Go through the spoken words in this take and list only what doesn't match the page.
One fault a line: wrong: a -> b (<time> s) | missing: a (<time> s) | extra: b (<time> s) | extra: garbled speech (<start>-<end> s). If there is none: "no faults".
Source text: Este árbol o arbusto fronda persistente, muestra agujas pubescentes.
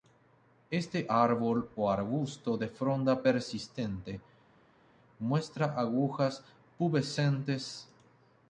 extra: de (2.6 s)